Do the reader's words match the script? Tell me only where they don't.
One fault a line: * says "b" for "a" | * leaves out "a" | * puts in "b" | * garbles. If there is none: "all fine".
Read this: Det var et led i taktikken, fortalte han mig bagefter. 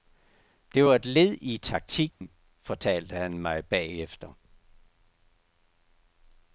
all fine